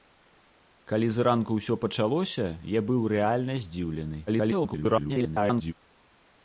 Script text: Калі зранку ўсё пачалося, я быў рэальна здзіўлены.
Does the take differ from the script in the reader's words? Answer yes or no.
yes